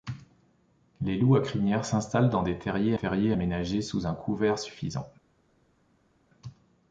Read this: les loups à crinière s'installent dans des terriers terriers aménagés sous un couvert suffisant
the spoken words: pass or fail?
pass